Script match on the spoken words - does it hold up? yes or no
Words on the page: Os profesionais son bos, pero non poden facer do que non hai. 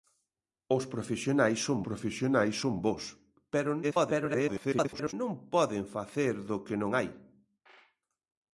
no